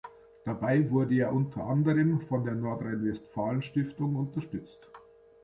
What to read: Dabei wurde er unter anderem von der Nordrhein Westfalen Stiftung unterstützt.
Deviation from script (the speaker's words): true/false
false